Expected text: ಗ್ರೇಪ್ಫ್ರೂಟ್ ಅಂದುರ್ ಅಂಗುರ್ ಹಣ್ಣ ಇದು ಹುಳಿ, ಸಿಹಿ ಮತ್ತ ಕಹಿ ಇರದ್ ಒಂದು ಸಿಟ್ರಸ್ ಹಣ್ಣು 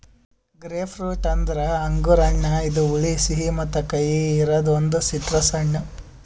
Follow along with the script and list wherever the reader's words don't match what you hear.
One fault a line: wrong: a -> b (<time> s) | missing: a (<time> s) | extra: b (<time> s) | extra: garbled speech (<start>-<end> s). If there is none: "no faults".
no faults